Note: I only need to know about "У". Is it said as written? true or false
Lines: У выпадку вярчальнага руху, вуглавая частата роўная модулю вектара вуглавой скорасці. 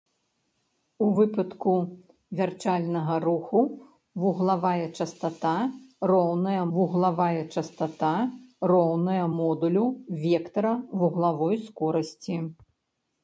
true